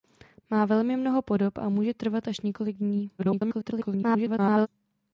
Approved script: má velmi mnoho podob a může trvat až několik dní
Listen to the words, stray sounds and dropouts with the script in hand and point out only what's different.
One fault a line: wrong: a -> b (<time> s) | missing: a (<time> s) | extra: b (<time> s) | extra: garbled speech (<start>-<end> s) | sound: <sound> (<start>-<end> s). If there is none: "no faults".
extra: garbled speech (3.2-4.7 s)